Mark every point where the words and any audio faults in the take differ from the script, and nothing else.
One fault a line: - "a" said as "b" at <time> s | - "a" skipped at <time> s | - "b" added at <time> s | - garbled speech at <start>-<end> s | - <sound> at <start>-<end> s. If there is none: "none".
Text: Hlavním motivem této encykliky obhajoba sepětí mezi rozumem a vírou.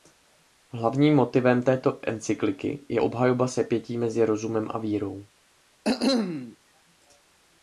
- "je" added at 2.9 s
- cough at 5.8-6.6 s